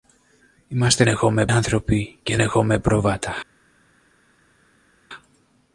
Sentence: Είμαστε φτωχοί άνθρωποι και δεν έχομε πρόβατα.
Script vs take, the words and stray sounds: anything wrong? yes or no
yes